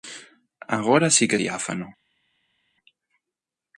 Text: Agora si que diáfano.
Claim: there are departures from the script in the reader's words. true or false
false